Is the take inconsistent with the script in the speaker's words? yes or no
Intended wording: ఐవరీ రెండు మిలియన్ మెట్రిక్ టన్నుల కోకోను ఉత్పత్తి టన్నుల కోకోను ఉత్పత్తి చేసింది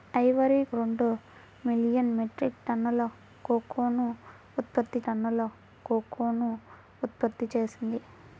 no